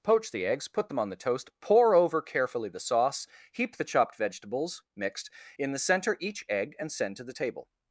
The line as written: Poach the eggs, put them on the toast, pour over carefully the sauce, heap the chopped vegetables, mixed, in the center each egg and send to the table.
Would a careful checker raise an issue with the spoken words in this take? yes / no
no